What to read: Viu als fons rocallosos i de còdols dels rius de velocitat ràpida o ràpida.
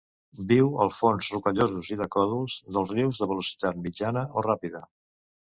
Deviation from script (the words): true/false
true